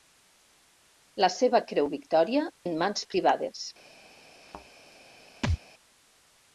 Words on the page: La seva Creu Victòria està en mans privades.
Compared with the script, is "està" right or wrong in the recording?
wrong